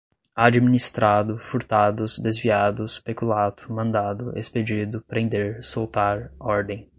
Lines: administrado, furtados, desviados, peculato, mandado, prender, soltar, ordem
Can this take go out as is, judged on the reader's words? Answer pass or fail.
fail